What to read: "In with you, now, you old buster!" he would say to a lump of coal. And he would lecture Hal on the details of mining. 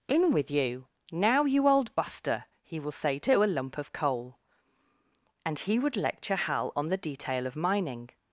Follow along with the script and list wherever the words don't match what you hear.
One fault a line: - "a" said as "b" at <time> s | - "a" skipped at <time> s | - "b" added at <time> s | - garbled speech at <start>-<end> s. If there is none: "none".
- "would" said as "will" at 2.8 s
- "details" said as "detail" at 7.0 s